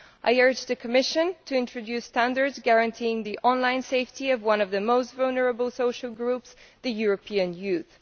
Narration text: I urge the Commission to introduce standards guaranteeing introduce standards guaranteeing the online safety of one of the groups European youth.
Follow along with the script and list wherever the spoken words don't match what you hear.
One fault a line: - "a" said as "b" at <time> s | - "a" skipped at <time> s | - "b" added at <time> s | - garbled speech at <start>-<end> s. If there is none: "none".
- "introduce standards guaranteeing" skipped at 3.3 s
- "most vulnerable social" added at 4.8 s